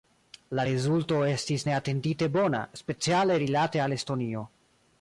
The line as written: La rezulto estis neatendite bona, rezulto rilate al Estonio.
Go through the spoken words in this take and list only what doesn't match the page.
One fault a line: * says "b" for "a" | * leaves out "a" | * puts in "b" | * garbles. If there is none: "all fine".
* says "speciale" for "rezulto"